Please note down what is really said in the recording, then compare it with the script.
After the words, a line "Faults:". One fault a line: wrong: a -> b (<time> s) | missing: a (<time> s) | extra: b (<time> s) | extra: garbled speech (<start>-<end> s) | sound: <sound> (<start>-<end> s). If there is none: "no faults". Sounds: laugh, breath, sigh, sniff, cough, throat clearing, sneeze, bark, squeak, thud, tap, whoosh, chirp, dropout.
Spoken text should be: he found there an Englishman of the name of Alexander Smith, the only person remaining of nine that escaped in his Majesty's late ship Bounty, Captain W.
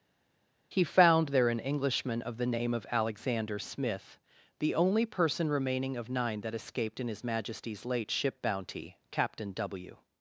he found there an Englishman of the name of Alexander Smith, the only person remaining of nine that escaped in his Majesty's late ship Bounty, Captain W.
Faults:
no faults